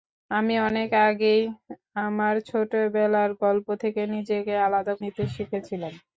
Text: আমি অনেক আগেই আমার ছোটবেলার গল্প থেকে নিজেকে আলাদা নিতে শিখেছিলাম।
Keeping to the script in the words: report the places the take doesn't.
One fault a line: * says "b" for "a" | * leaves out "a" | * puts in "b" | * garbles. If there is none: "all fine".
all fine